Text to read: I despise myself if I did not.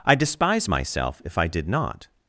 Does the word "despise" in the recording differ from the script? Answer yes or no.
no